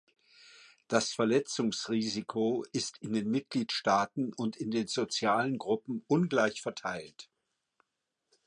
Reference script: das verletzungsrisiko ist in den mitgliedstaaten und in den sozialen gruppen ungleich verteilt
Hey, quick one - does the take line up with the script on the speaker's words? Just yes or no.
yes